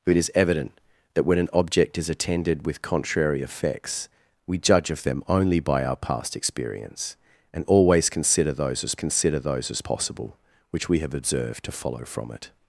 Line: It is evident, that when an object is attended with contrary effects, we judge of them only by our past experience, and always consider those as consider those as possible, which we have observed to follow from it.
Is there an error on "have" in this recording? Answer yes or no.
no